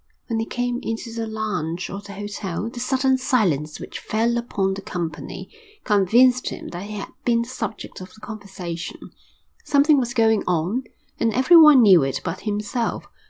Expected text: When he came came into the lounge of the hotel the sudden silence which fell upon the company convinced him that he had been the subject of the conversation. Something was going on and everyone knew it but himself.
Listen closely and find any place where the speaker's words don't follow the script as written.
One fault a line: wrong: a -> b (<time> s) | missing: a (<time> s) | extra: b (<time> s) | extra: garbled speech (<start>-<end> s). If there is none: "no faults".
missing: came (0.8 s)